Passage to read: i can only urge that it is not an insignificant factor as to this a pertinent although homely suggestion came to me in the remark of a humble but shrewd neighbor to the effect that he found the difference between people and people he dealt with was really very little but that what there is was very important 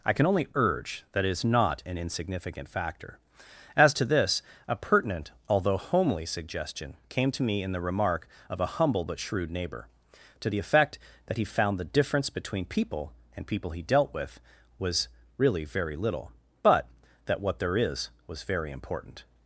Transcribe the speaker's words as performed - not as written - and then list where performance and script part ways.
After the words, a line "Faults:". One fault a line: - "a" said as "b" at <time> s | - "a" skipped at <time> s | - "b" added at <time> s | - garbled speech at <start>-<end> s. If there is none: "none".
i can only urge that it is not an insignificant factor as to this a pertinent although homely suggestion came to me in the remark of a humble but shrewd neighbor to the effect that he found the difference between people and people he dealt with was really very little but that what there is was very important
Faults:
none